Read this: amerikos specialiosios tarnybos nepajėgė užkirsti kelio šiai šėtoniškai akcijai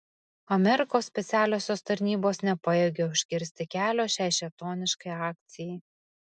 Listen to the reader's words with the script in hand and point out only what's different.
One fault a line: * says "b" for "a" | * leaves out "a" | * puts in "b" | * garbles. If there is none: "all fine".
all fine